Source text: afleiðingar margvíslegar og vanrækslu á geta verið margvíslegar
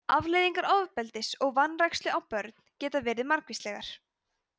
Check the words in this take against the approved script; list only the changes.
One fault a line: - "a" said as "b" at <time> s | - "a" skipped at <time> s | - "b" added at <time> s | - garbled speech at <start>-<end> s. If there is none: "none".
- "margvíslegar" said as "ofbeldis" at 0.8 s
- "börn" added at 2.4 s